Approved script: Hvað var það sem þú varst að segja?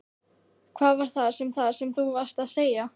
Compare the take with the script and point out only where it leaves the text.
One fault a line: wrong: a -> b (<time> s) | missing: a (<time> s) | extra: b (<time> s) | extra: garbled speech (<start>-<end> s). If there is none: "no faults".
extra: það sem (1.5 s)